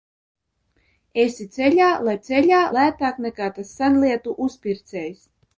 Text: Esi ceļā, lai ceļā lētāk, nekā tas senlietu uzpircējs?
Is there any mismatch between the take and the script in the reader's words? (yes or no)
no